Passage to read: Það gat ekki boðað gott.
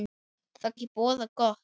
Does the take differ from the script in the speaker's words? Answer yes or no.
yes